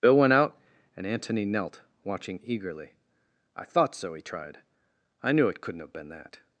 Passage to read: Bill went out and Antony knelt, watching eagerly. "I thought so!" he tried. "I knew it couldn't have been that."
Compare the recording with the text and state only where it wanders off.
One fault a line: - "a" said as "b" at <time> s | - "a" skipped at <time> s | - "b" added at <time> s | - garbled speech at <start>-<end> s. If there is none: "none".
none